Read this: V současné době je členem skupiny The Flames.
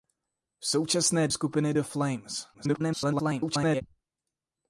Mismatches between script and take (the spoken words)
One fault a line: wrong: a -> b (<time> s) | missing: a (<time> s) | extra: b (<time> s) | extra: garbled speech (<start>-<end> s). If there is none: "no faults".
missing: době je členem (1.3 s)
extra: garbled speech (2.5-3.8 s)